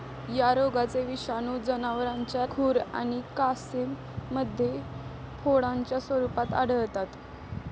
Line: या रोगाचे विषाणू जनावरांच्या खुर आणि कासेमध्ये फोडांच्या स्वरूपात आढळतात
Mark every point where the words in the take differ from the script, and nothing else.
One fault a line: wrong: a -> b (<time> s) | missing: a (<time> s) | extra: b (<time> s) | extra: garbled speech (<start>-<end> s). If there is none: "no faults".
no faults